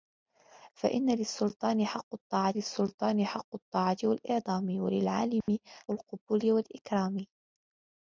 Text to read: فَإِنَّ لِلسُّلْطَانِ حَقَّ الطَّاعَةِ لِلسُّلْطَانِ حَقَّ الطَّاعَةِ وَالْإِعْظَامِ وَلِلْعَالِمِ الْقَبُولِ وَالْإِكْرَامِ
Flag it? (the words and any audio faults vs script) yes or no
yes